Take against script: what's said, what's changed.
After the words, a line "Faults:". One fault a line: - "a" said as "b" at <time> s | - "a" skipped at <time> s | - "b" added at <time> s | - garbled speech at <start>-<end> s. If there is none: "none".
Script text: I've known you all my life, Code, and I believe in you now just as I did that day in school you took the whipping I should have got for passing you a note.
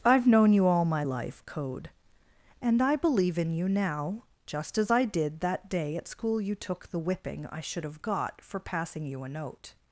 I've known you all my life, Code, and I believe in you now just as I did that day at school you took the whipping I should have got for passing you a note.
Faults:
- "in" said as "at" at 6.0 s